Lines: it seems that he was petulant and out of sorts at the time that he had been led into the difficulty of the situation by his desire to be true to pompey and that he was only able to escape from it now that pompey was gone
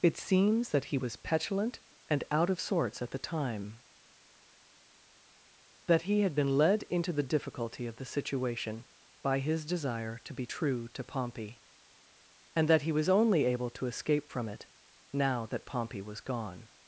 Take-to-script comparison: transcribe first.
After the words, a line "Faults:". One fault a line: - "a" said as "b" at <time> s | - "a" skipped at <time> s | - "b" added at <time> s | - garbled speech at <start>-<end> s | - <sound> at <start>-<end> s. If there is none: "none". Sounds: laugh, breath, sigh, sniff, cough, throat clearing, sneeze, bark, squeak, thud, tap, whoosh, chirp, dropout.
it seems that he was petulant and out of sorts at the time that he had been led into the difficulty of the situation by his desire to be true to pompey and that he was only able to escape from it now that pompey was gone
Faults:
none